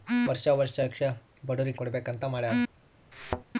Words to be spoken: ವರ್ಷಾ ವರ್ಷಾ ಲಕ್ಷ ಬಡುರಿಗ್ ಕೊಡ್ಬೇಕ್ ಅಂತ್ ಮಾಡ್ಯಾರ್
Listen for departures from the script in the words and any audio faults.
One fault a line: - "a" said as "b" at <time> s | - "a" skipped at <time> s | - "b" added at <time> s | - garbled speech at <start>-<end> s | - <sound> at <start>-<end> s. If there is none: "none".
- thud at 3.1-3.4 s